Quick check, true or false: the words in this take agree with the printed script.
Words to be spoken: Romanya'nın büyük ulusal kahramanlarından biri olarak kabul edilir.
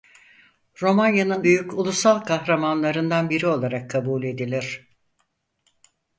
true